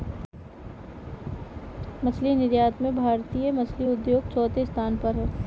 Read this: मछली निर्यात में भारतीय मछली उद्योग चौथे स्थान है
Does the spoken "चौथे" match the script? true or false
true